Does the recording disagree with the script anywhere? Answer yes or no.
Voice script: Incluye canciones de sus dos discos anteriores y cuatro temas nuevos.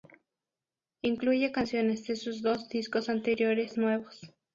yes